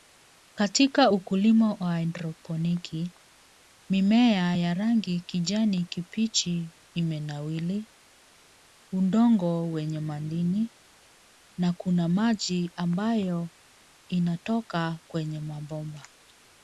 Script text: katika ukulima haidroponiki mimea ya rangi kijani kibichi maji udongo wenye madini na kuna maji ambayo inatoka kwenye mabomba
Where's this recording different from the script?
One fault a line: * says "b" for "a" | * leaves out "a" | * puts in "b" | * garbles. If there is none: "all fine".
* puts in "wa"
* says "imenawiri" for "maji"